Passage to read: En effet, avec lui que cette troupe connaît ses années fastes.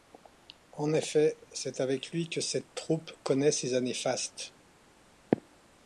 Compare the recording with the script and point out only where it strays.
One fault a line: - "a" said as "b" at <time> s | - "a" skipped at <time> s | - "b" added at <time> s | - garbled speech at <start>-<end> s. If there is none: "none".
- "c'est" added at 1.5 s